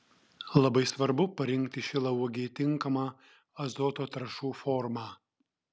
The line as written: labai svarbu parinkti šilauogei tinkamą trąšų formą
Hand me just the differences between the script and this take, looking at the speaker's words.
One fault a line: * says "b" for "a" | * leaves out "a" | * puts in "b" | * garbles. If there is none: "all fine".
* puts in "azoto"